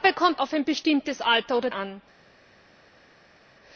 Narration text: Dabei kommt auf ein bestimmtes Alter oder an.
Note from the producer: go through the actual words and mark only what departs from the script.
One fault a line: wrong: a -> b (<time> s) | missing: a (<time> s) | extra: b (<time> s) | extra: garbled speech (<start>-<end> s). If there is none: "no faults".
no faults